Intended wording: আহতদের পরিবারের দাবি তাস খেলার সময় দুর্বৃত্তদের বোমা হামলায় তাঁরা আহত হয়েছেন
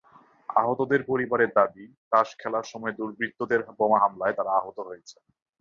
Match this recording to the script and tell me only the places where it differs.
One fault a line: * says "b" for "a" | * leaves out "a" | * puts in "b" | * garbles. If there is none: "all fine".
all fine